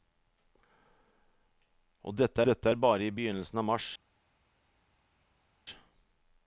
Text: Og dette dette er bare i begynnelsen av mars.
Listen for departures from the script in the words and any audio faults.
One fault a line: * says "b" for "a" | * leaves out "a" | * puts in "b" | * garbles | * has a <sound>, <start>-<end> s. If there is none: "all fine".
all fine